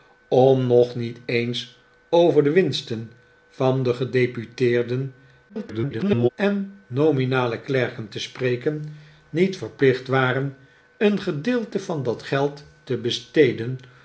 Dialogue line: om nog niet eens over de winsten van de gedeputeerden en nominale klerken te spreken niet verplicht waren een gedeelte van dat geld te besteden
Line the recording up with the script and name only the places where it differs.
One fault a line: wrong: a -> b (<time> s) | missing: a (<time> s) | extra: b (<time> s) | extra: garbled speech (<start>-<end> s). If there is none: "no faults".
extra: garbled speech (5.5-6.3 s)